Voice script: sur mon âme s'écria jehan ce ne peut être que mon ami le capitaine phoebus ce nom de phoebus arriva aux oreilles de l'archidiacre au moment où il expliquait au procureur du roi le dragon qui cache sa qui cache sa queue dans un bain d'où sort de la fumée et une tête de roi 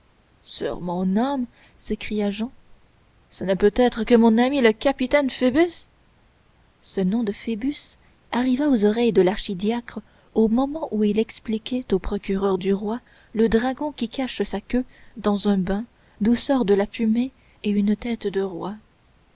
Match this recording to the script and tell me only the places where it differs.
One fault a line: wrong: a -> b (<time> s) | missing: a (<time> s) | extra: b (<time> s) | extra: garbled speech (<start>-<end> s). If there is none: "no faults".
missing: qui cache sa (14.6 s)